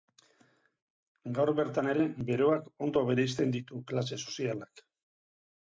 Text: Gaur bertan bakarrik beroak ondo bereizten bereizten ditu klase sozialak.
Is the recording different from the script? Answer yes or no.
yes